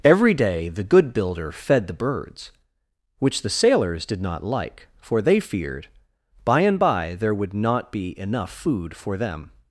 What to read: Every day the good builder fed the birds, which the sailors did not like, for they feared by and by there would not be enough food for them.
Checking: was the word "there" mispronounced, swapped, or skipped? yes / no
no